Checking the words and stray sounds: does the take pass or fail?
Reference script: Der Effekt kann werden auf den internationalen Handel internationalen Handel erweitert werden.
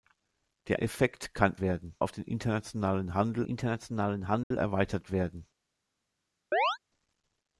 fail